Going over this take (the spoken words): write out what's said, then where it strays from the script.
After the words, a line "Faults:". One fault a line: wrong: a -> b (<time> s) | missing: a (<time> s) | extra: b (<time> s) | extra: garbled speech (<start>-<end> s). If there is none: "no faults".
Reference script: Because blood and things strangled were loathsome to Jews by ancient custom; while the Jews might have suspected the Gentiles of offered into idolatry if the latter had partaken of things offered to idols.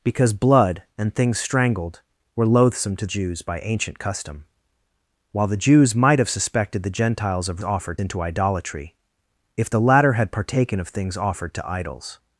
Because blood and things strangled were loathsome to Jews by ancient custom; while the Jews might have suspected the Gentiles of offered into idolatry if the latter had partaken of things offered to idols.
Faults:
no faults